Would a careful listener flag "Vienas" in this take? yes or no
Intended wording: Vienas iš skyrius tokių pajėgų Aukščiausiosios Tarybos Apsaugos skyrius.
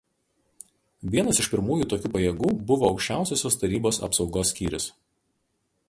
no